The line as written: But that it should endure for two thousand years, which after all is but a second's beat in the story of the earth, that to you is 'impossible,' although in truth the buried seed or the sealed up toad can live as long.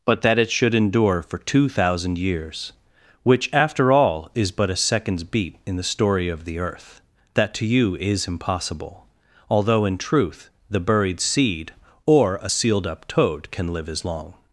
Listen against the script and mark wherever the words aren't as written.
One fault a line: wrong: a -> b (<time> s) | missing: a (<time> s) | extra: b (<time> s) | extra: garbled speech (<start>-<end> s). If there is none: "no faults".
wrong: the -> a (12.4 s)